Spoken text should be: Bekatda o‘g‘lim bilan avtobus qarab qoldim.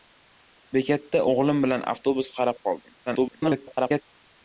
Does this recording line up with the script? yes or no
no